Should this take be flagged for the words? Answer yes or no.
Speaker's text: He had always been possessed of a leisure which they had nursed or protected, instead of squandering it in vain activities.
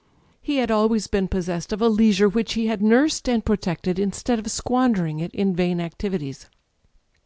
yes